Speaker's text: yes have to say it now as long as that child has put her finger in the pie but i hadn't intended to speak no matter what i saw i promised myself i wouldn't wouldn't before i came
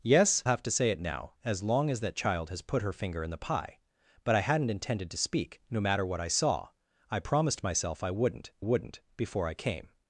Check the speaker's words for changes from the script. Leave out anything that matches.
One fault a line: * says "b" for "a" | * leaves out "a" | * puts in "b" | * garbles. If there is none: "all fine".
all fine